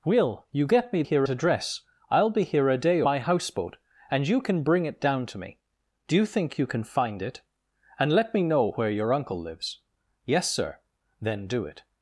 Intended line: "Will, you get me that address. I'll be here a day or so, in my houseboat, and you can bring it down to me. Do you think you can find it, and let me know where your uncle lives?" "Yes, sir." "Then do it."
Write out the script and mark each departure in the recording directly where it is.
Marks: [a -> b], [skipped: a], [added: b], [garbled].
"Will, you get me [that -> here] address. I'll be here a day [skipped: or so, in] my houseboat, and you can bring it down to me. Do you think you can find it, and let me know where your uncle lives?" "Yes, sir." "Then do it."